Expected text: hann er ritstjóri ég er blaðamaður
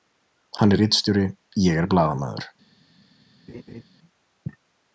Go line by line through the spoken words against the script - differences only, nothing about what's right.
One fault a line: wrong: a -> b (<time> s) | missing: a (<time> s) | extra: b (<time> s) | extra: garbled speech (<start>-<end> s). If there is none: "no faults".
no faults